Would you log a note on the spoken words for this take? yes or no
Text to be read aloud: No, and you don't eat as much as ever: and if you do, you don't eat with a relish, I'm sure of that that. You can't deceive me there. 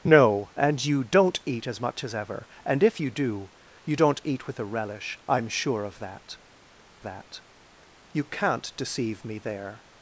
no